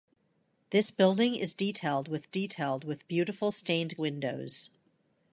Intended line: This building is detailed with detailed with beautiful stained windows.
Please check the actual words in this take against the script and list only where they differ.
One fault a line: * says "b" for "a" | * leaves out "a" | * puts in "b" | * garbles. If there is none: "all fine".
all fine